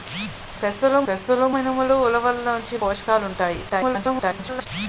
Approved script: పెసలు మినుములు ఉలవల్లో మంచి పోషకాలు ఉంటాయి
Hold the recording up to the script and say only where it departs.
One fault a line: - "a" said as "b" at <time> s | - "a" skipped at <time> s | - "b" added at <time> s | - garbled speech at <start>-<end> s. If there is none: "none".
- "పెసలు" added at 1.1 s
- "మంచి" skipped at 2.5 s
- garbled speech at 3.7-4.7 s